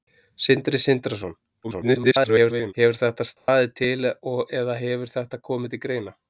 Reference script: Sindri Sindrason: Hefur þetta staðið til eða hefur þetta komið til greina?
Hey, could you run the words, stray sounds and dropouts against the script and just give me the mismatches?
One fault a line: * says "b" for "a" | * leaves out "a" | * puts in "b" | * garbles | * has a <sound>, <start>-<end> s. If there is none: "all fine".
* garbles
* has a dropout, 3.4-3.5 s